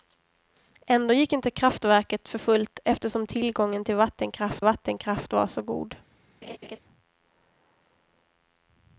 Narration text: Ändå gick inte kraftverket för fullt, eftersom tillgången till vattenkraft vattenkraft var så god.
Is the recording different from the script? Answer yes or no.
no